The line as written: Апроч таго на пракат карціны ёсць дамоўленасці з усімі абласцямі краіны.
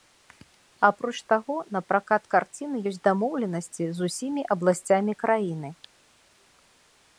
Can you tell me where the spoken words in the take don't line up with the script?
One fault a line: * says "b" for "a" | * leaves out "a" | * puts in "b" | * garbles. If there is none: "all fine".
all fine